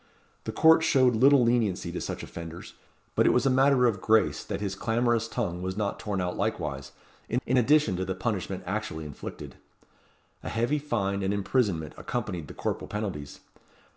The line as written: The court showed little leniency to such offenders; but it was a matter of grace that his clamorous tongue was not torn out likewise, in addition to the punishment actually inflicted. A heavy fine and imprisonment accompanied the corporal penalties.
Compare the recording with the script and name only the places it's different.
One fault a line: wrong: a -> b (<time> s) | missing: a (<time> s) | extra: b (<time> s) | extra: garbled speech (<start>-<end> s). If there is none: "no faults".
extra: in (7.5 s)